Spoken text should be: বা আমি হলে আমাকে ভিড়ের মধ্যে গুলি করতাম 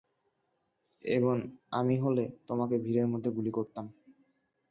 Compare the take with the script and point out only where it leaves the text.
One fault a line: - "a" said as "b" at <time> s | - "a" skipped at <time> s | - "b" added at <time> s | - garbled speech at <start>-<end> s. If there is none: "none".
- "বা" said as "এবং" at 1.0 s
- "আমাকে" said as "তোমাকে" at 2.5 s